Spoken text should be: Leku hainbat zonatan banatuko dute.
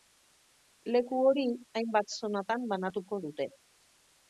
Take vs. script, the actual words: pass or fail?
fail